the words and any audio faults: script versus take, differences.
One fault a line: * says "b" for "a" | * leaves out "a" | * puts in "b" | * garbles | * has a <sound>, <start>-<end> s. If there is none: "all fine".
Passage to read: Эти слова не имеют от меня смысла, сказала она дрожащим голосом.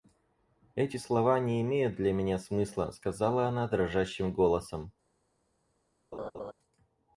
* says "для" for "от"
* has a laugh, 6.1-6.5 s